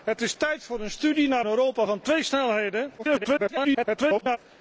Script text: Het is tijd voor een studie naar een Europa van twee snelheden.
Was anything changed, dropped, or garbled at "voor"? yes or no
no